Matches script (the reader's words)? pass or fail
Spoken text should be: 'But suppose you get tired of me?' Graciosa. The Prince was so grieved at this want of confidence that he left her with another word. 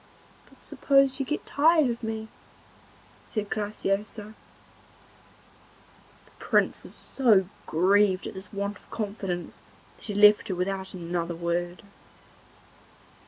fail